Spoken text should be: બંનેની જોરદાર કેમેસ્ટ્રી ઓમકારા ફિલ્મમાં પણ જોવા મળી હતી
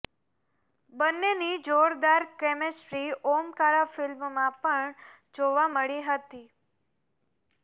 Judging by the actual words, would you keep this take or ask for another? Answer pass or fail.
pass